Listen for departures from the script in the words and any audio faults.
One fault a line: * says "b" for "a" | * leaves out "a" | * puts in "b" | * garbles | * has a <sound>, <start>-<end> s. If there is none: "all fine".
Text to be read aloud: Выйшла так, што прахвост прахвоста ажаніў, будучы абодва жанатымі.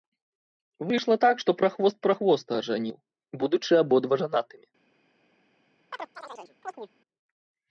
* has a chirp, 5.9-6.9 s